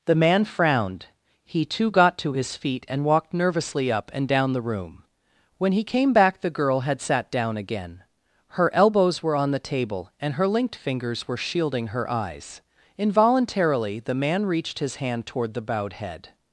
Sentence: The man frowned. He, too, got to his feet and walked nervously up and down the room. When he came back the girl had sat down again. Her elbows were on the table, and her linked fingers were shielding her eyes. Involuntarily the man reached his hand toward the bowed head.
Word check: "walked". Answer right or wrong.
right